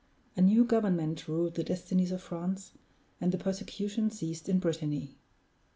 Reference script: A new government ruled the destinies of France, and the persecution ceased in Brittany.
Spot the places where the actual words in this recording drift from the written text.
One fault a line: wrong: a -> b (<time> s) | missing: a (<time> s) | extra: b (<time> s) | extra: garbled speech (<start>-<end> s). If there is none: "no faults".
no faults